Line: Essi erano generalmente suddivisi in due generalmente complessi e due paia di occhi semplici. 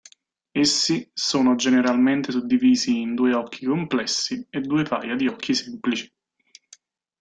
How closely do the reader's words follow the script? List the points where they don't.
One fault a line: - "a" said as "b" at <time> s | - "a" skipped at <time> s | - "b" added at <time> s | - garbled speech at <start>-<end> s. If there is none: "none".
- "erano" said as "sono" at 1.1 s
- "generalmente" said as "occhi" at 3.3 s